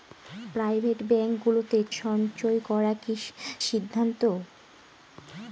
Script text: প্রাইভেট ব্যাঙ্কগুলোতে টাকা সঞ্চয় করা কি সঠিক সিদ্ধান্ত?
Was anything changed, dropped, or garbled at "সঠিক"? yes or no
yes